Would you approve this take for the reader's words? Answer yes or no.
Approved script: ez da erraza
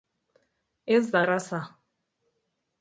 yes